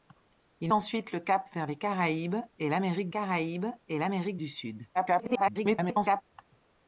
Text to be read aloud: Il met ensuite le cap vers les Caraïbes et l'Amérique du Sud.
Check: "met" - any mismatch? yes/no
yes